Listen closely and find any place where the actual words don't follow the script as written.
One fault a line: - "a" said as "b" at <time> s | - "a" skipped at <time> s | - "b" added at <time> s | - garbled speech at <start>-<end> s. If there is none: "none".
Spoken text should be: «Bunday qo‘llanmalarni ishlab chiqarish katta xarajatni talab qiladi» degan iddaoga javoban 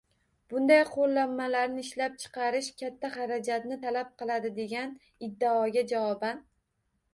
none